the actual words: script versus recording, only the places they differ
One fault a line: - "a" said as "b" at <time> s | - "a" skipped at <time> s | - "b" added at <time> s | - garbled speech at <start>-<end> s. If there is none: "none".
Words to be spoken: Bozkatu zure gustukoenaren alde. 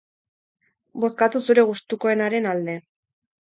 none